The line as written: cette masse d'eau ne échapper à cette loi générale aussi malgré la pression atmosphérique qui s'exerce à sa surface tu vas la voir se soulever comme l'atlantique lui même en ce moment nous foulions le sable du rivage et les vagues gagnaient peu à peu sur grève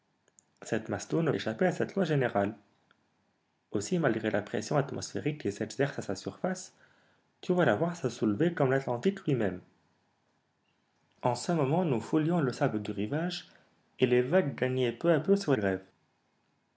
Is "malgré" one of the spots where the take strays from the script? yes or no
no